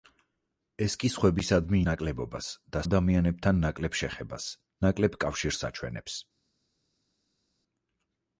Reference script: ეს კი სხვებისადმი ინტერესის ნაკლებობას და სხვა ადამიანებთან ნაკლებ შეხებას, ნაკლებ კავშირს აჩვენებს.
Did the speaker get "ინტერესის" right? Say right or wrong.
wrong